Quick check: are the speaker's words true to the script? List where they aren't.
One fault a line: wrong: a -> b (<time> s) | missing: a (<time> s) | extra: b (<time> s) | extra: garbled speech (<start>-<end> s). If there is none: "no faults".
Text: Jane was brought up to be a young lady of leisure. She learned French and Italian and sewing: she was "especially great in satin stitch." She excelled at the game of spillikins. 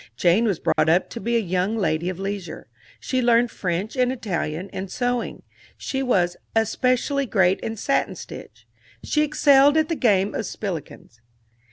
no faults